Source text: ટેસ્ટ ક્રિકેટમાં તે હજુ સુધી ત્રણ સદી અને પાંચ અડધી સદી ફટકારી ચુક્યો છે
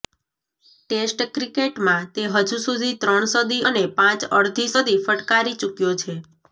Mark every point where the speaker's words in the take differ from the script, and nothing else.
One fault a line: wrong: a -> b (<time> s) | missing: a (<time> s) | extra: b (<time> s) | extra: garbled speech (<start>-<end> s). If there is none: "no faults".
no faults